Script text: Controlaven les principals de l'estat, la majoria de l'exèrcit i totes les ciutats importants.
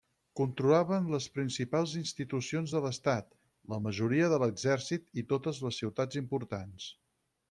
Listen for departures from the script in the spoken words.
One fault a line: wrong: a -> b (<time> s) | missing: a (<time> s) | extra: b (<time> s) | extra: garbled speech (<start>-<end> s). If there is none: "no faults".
extra: institucions (2.0 s)